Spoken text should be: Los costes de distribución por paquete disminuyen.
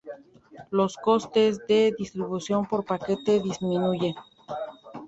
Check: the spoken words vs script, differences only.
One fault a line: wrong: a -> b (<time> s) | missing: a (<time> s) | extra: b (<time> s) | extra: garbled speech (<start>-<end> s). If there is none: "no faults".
no faults